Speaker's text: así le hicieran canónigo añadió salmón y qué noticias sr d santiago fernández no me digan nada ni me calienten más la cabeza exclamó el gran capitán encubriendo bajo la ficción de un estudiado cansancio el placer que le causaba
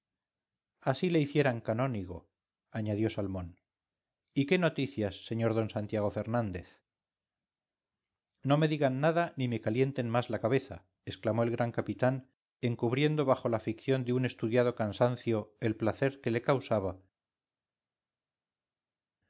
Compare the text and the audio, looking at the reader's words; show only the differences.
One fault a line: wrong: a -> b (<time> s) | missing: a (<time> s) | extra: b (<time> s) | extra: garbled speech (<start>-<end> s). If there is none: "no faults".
no faults